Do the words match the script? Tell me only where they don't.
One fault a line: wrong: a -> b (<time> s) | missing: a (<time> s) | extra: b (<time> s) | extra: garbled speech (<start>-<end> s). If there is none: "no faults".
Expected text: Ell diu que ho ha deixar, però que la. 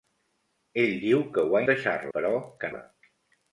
no faults